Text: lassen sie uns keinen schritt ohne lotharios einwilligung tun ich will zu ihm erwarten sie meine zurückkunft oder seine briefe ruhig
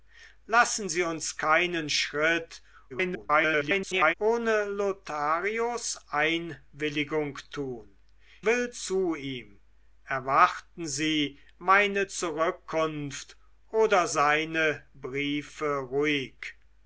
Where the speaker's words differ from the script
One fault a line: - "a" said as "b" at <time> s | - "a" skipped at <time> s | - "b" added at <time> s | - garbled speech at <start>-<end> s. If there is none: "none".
- garbled speech at 2.9-4.1 s
- "ich" skipped at 8.0 s